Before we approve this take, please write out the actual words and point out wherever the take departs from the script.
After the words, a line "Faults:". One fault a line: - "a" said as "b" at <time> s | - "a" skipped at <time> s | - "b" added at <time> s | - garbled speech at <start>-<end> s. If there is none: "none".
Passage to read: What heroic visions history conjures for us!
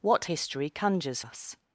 What history conjures us!
Faults:
- "heroic visions" skipped at 0.2 s
- "for" skipped at 1.2 s